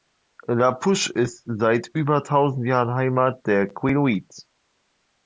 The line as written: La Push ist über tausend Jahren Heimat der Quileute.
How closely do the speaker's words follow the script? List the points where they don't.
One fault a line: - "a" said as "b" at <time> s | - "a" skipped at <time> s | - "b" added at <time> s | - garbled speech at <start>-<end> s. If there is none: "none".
- "seit" added at 1.4 s